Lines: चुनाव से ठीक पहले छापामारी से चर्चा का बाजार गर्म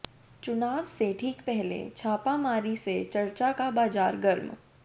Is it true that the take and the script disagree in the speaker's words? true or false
false